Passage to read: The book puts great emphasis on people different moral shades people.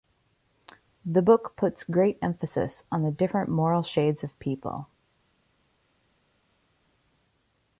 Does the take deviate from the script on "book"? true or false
false